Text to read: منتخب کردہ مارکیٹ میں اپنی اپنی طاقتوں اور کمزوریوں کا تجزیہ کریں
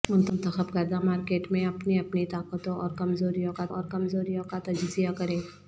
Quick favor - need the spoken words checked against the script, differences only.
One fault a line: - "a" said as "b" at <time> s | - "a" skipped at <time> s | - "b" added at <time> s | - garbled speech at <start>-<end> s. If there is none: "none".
- "اور کمزوریوں کا" added at 3.7 s